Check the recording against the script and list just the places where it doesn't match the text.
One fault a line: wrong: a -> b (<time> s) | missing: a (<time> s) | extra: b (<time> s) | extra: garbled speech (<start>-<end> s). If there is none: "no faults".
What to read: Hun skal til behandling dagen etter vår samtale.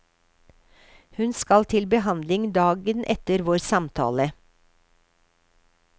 no faults